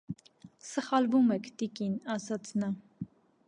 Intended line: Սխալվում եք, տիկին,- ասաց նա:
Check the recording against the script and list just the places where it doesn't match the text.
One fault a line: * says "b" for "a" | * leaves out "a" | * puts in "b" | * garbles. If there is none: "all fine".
all fine